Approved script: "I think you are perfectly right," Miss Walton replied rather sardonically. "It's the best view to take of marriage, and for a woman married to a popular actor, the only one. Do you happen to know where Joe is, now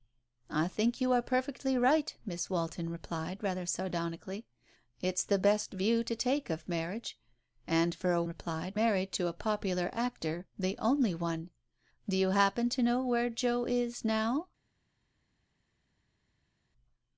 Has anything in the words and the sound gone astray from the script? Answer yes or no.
yes